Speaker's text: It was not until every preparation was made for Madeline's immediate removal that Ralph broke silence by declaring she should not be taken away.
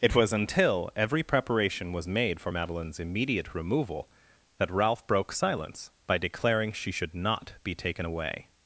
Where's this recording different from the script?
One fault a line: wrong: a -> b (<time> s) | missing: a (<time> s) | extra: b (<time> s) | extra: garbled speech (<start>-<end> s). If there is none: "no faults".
missing: not (0.3 s)